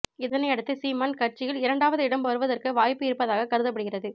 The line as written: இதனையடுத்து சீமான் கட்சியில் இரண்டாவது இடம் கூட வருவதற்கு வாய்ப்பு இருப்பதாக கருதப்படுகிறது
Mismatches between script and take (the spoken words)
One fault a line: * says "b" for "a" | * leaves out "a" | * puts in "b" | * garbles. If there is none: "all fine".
* leaves out "கூட"